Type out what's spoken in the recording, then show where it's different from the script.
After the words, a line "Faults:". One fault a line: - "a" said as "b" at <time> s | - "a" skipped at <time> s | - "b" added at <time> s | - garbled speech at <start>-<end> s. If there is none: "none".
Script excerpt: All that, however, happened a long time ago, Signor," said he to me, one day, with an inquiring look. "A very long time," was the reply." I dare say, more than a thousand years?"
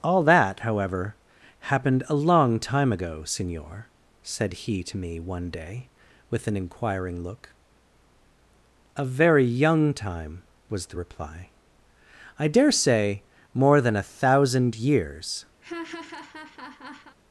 All that, however, happened a long time ago, Signor," said he to me, one day, with an inquiring look. "A very young time," was the reply." I dare say, more than a thousand years?"
Faults:
- "long" said as "young" at 9.4 s